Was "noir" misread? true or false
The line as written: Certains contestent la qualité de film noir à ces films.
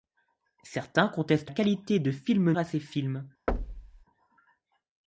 true